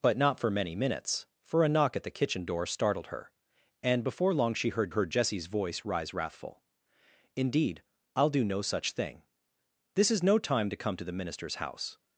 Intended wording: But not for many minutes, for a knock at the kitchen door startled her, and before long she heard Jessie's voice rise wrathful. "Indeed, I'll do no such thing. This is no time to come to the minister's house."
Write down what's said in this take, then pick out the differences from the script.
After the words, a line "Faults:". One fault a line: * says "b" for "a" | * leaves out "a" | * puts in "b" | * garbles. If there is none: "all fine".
But not for many minutes, for a knock at the kitchen door startled her, and before long she heard heard Jessie's voice rise wrathful. "Indeed, I'll do no such thing. This is no time to come to the minister's house."
Faults:
* puts in "heard"